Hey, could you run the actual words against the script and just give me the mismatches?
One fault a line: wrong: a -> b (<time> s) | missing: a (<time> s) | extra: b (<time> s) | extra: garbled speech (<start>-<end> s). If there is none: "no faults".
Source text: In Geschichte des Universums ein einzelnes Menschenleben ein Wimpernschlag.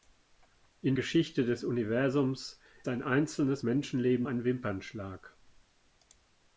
no faults